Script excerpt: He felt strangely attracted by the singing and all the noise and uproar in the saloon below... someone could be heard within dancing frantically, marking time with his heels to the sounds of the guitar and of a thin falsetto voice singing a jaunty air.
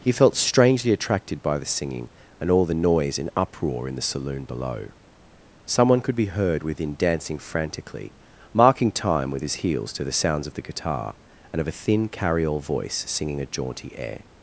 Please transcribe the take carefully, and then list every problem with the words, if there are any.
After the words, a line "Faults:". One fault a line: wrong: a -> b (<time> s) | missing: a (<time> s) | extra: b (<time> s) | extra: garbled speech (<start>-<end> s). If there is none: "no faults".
He felt strangely attracted by the singing and all the noise and uproar in the saloon below... someone could be heard within dancing frantically, marking time with his heels to the sounds of the guitar and of a thin carryall voice singing a jaunty air.
Faults:
wrong: falsetto -> carryall (12.1 s)